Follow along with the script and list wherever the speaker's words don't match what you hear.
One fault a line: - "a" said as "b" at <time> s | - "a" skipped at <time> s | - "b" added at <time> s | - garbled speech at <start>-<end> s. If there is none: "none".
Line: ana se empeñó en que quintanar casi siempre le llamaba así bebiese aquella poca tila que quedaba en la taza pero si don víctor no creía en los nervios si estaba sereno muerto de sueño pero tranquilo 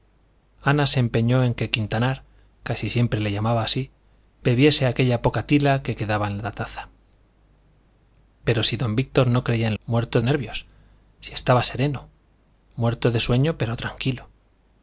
- "los" said as "muerto" at 9.8 s